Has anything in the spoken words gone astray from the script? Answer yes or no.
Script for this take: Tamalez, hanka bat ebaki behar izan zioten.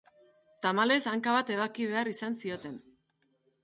no